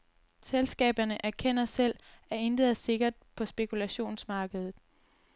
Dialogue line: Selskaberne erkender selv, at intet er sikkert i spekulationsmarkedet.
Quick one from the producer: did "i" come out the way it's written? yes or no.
no